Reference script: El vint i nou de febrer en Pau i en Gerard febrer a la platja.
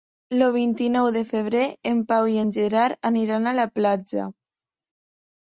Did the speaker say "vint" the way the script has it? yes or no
yes